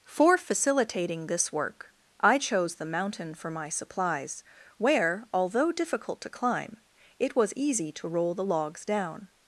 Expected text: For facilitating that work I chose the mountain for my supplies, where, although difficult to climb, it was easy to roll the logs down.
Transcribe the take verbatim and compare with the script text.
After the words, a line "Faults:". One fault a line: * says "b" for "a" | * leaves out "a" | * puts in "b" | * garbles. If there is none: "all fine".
For facilitating this work I chose the mountain for my supplies, where, although difficult to climb, it was easy to roll the logs down.
Faults:
* says "this" for "that"